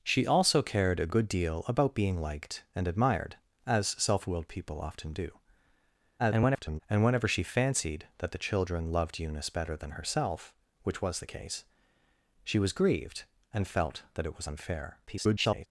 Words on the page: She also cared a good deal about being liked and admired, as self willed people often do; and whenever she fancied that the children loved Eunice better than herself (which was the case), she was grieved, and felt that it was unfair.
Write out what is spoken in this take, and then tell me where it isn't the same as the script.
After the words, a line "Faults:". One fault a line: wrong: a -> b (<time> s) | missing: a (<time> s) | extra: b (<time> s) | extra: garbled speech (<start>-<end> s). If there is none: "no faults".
She also cared a good deal about being liked and admired, as self willed people often do; [garbled] and whenever she fancied that the children loved Eunice better than herself (which was the case), she was grieved, and felt that it was unfair. [garbled]
Faults:
extra: garbled speech (6.2-6.8 s)
extra: garbled speech (15.1-15.7 s)